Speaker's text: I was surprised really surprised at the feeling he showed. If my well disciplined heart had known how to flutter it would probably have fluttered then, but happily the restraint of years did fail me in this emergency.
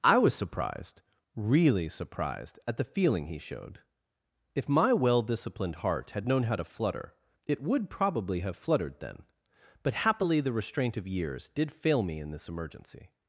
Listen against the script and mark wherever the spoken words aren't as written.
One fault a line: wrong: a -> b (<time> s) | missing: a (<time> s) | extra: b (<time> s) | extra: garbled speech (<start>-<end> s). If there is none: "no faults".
no faults